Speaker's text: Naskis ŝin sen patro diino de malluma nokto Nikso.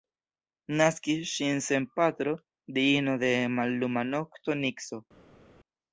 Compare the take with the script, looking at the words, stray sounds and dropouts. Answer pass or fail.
pass